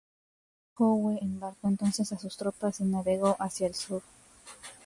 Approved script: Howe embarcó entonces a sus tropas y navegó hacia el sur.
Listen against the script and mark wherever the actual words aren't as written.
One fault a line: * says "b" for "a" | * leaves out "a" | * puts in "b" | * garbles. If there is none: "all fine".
all fine